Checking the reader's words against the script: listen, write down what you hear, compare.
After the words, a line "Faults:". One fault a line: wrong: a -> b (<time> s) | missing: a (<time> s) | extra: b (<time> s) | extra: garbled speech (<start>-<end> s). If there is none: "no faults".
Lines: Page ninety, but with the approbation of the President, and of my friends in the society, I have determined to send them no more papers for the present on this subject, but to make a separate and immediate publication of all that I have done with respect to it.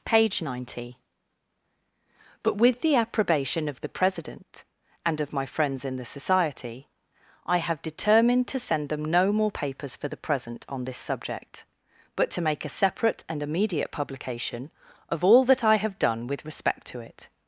Page ninety, but with the approbation of the President, and of my friends in the society, I have determined to send them no more papers for the present on this subject, but to make a separate and immediate publication of all that I have done with respect to it.
Faults:
no faults